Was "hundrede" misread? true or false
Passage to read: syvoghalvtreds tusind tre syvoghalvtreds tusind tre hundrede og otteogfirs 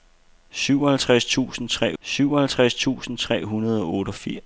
false